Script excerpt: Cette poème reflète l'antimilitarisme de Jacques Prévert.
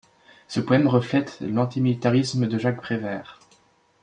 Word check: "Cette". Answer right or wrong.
wrong